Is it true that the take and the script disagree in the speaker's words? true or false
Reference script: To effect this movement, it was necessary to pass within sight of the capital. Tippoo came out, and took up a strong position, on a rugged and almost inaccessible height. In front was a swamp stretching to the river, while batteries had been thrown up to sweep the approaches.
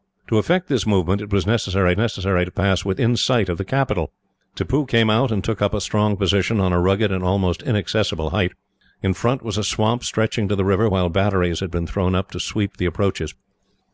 true